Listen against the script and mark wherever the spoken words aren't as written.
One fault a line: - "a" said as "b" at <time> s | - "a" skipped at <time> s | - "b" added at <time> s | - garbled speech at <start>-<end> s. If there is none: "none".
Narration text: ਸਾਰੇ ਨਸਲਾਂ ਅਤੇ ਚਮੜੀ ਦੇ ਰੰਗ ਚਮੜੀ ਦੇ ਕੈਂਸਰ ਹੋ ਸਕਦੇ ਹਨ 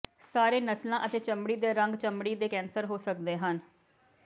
none